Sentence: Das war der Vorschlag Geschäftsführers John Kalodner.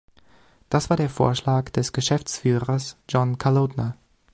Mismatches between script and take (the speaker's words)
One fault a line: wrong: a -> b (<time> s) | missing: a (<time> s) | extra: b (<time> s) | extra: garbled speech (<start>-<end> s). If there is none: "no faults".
extra: des (1.7 s)